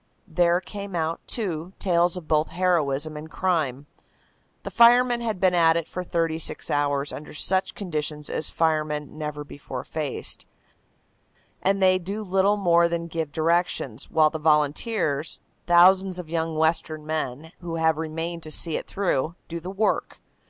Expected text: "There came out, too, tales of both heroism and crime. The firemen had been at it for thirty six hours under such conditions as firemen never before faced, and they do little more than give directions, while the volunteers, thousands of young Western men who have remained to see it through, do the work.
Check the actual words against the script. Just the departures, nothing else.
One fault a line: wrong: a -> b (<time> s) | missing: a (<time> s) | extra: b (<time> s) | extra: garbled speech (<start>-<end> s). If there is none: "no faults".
no faults